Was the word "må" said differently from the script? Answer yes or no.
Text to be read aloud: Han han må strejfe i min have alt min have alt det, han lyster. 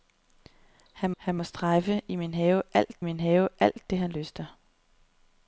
no